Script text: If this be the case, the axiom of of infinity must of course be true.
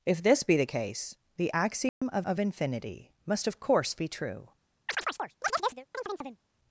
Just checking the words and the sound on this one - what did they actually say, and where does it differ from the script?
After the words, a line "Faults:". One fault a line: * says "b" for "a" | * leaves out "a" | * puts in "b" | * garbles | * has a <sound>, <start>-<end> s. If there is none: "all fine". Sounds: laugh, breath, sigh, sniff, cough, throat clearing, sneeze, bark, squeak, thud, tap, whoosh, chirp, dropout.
If this be the case, the axiom of of infinity must of course be true.
Faults:
* has a dropout, 1.9-2.0 s
* has a chirp, 4.9-6.4 s